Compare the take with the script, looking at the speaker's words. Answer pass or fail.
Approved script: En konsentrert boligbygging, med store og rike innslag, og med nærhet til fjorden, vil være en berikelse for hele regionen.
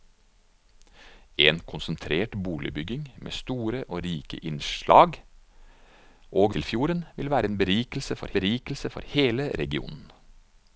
fail